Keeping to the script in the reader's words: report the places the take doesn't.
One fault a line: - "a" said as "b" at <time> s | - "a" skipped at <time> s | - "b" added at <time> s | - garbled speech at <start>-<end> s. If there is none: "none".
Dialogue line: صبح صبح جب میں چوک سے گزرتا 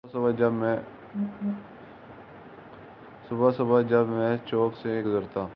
none